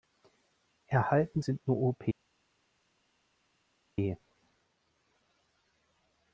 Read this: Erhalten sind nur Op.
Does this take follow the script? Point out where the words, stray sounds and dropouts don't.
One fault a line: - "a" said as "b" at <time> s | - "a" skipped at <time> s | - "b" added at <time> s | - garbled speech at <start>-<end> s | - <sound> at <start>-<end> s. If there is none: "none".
none